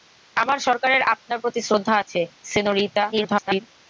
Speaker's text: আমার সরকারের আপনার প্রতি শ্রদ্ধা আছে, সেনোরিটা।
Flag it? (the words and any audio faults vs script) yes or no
yes